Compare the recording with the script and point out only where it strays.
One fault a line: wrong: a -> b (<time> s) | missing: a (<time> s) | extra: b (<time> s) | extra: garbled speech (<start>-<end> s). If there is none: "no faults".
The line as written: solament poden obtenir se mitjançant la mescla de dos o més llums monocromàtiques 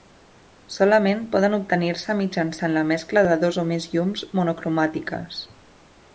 no faults